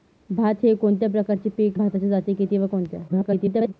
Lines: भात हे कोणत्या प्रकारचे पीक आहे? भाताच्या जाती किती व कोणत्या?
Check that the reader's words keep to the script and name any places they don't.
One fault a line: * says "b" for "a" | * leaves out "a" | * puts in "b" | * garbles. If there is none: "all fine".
* leaves out "आहे"
* garbles